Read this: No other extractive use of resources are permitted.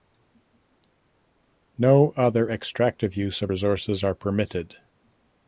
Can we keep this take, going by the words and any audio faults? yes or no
yes